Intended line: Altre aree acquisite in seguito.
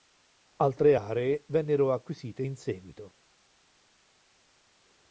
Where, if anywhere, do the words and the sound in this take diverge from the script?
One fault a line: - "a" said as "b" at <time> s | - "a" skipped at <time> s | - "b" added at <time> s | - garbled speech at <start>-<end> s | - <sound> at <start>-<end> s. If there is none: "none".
- "vennero" added at 1.5 s